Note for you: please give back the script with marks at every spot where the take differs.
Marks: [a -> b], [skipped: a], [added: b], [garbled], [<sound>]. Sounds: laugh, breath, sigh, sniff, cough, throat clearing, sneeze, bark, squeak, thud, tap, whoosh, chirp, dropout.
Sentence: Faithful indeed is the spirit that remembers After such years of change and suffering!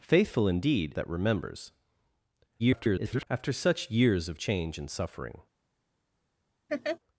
Faithful indeed [skipped: is the spirit] that remembers [garbled] After such years of change and suffering! [laugh]